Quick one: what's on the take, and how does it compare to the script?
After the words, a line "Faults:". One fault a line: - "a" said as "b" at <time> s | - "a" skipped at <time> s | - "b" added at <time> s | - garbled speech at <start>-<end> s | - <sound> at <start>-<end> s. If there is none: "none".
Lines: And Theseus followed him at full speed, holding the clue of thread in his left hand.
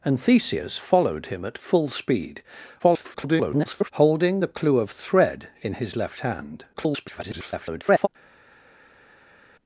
And Theseus followed him at full speed, [garbled] holding the clue of thread in his left hand. [garbled]
Faults:
- garbled speech at 2.8-3.9 s
- garbled speech at 6.7-8.1 s